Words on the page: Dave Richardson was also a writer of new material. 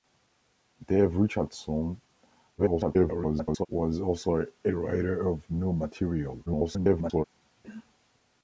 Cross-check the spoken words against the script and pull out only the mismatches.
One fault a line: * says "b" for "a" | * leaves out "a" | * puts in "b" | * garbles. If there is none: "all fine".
* garbles
* garbles